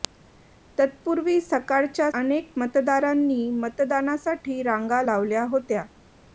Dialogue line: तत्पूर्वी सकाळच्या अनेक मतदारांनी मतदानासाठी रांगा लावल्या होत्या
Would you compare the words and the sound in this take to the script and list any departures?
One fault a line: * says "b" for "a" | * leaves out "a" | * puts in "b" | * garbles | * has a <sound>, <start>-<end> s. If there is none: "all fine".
all fine